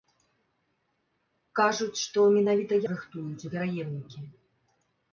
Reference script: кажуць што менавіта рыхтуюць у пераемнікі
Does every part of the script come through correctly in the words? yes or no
yes